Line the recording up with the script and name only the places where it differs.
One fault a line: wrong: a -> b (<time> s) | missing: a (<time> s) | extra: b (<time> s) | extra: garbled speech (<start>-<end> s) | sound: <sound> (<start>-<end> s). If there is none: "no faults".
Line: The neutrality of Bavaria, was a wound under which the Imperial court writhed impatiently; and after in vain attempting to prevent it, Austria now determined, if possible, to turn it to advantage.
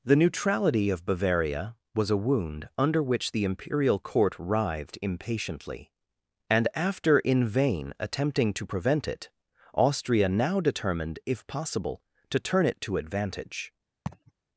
sound: laugh (14.1-14.3 s)